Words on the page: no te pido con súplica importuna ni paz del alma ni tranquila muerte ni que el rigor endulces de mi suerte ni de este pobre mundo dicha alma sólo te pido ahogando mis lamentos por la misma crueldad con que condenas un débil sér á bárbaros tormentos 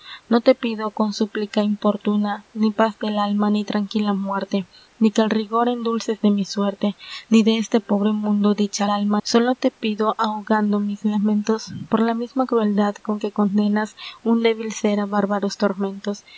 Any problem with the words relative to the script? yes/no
no